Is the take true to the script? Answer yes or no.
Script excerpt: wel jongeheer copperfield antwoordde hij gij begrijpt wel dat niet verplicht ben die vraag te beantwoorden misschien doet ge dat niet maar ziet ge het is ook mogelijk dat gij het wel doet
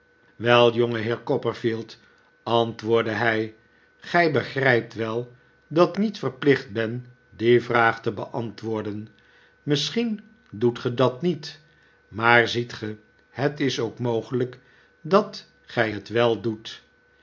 yes